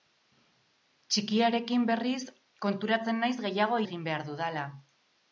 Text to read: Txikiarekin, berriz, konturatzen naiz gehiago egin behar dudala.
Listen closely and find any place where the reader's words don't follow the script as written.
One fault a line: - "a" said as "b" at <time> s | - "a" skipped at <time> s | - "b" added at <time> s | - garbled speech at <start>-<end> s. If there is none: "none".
none